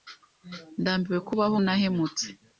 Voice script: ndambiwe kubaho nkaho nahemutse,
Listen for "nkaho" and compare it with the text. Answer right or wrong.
wrong